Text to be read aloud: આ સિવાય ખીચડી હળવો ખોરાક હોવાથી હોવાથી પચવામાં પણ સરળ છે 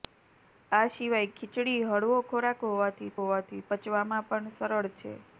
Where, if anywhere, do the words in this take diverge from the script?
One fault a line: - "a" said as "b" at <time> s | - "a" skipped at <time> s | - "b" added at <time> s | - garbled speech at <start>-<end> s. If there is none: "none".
none